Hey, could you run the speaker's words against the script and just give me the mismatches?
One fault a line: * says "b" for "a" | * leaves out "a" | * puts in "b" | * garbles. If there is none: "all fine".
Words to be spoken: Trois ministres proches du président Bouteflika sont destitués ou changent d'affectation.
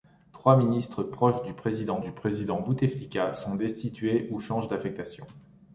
* puts in "du président"